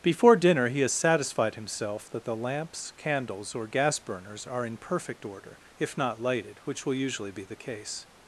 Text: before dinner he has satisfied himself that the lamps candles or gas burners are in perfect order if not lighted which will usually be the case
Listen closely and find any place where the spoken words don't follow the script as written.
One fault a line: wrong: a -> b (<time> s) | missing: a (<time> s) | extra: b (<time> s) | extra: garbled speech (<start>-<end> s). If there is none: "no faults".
no faults